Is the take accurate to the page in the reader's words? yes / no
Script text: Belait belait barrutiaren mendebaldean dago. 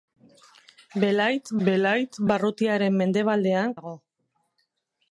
yes